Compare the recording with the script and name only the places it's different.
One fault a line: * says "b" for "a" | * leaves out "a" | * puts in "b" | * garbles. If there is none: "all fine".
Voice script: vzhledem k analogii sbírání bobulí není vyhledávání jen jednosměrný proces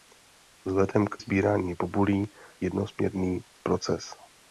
* leaves out "analogii"
* leaves out "není vyhledávání jen"